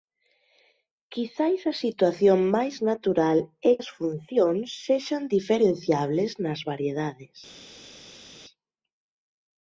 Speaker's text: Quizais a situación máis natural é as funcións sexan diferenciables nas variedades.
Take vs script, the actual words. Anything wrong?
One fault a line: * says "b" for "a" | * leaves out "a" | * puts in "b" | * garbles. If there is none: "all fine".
all fine